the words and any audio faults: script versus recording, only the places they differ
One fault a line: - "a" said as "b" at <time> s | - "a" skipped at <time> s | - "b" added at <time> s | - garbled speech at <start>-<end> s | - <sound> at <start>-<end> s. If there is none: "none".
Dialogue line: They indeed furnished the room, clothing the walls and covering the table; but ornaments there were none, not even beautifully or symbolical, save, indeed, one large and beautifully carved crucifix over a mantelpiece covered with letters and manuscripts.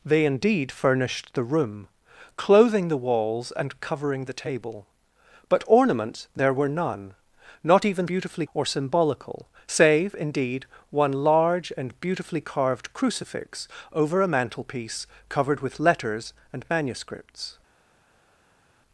none